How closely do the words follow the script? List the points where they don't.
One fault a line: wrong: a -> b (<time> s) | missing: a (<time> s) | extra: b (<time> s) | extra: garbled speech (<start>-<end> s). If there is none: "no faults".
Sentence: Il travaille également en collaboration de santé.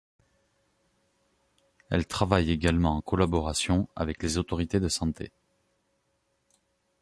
wrong: Il -> Elle (1.9 s)
extra: avec les autorités (4.0 s)